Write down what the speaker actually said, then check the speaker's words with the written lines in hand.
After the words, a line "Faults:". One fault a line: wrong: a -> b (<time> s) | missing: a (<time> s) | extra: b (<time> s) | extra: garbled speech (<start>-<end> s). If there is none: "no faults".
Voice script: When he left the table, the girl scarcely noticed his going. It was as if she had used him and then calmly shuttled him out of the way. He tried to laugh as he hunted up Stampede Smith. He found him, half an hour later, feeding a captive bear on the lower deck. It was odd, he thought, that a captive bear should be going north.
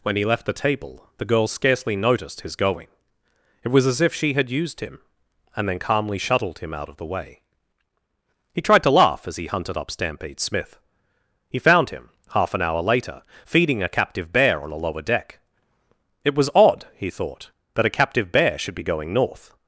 When he left the table, the girl scarcely noticed his going. It was as if she had used him and then calmly shuttled him out of the way. He tried to laugh as he hunted up Stampede Smith. He found him, half an hour later, feeding a captive bear on a lower deck. It was odd, he thought, that a captive bear should be going north.
Faults:
wrong: the -> a (14.7 s)